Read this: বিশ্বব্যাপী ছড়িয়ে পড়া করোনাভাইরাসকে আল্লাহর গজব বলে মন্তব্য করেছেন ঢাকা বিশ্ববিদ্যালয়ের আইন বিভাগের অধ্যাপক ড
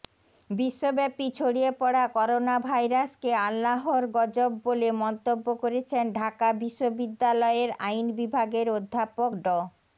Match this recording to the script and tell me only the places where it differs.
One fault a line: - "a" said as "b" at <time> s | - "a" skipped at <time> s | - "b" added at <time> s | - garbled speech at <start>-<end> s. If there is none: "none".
none